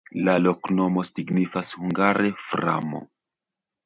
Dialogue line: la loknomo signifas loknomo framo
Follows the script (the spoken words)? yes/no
no